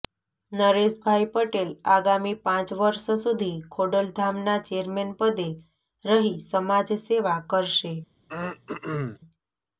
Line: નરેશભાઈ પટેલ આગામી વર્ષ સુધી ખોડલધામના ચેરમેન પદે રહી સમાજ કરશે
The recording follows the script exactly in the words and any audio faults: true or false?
false